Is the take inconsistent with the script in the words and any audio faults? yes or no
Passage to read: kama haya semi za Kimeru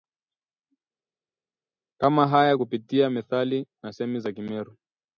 yes